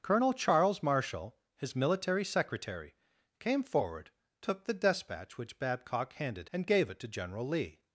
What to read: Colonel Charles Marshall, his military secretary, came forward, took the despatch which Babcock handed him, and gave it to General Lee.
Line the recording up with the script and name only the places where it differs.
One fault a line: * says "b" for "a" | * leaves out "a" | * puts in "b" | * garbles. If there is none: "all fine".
* leaves out "him"